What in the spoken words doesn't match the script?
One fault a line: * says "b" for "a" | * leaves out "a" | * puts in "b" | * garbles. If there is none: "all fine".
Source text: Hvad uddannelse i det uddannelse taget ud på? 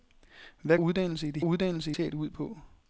all fine